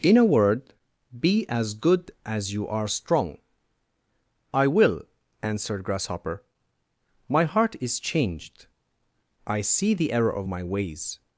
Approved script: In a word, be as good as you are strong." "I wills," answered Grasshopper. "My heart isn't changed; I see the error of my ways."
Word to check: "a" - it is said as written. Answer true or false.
true